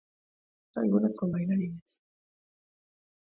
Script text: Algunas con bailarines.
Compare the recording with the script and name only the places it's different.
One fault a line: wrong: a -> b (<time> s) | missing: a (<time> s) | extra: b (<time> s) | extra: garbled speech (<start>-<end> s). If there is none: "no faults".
no faults